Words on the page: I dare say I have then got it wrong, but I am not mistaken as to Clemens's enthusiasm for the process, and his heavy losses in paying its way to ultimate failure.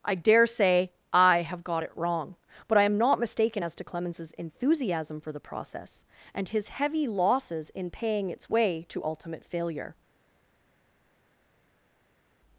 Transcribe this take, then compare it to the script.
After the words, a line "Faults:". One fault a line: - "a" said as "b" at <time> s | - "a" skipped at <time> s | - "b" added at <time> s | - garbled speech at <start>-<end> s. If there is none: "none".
I dare say I have got it wrong, but I am not mistaken as to Clemens's enthusiasm for the process, and his heavy losses in paying its way to ultimate failure.
Faults:
- "then" skipped at 1.6 s